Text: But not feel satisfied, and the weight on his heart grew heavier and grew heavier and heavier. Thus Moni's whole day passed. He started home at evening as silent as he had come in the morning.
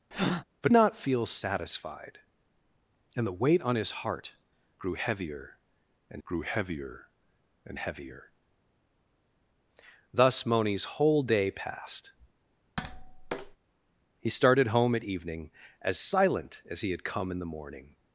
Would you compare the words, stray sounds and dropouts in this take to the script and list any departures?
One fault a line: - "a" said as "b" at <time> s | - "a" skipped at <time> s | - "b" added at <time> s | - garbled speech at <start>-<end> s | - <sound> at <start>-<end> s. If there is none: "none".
- breath at 0.1-0.4 s
- tap at 12.8-13.6 s